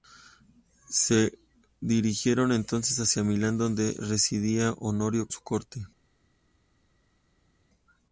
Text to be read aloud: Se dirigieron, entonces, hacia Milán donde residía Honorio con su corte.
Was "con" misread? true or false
true